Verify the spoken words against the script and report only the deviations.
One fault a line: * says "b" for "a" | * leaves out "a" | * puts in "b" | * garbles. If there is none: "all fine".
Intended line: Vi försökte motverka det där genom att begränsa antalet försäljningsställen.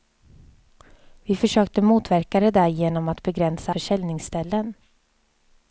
* leaves out "antalet"